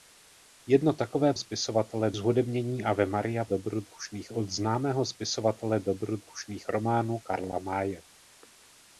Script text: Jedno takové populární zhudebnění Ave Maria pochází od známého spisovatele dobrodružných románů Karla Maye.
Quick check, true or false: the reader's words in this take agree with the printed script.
false